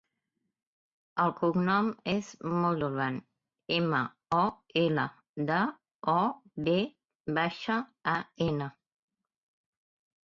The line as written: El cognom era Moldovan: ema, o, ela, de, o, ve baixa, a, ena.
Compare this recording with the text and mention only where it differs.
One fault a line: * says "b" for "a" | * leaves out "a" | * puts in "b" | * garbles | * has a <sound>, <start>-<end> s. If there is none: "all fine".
* says "és" for "era"